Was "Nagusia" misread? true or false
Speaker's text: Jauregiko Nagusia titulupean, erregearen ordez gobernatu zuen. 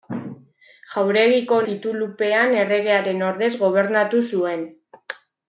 true